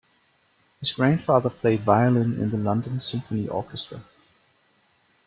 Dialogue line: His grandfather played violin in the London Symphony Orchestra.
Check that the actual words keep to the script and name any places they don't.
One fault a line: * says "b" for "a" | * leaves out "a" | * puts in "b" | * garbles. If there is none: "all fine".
all fine